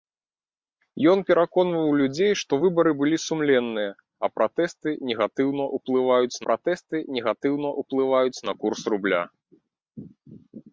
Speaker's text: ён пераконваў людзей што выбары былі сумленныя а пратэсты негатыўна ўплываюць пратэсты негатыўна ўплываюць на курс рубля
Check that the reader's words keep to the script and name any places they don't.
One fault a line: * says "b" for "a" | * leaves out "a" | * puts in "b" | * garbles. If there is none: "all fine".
all fine